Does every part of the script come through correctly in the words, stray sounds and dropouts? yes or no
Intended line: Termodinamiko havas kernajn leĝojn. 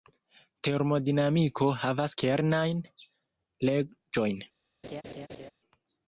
no